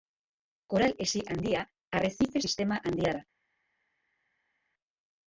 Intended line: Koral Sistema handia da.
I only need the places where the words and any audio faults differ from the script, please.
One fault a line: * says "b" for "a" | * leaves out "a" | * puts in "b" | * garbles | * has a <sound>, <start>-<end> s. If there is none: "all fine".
* puts in "Hesi Handia Arrezife"